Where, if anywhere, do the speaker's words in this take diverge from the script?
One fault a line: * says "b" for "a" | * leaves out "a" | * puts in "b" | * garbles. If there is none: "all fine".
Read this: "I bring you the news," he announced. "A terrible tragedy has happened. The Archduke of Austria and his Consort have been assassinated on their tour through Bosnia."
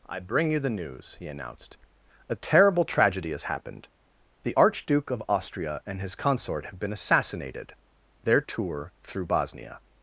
* leaves out "on"